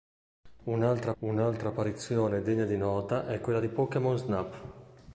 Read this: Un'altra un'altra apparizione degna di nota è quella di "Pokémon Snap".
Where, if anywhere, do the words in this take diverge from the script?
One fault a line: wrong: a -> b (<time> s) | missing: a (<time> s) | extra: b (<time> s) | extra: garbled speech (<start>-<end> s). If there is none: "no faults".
no faults